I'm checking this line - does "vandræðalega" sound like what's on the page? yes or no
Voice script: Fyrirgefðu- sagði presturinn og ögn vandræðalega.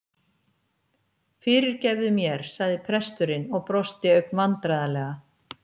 yes